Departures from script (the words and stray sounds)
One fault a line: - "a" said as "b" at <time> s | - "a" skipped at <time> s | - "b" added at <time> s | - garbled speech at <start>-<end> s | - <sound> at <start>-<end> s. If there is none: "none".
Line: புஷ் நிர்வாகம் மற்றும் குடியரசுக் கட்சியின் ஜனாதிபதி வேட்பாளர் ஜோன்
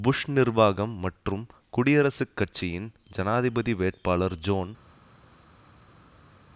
none